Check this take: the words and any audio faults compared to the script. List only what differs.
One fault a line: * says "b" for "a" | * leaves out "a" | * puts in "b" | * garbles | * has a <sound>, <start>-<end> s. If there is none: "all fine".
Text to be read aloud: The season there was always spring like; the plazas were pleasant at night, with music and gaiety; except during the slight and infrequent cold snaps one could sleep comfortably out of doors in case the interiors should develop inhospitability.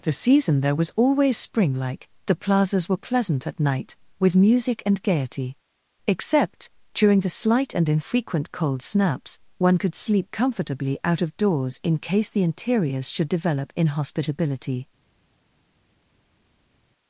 all fine